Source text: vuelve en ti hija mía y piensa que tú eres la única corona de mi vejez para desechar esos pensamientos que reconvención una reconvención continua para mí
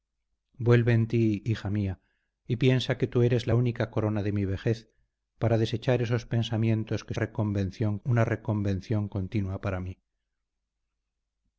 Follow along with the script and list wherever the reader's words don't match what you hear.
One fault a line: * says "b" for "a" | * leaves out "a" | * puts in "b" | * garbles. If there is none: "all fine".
all fine